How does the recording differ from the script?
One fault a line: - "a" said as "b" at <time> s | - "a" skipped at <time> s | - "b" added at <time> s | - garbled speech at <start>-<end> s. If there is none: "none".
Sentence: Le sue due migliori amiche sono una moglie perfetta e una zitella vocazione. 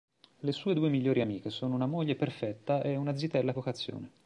none